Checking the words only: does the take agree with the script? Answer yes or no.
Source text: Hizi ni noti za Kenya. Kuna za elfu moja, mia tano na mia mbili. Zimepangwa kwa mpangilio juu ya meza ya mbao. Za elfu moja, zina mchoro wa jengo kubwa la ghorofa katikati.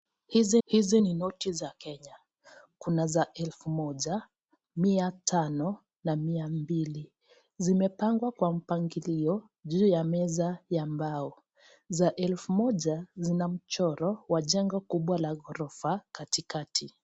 no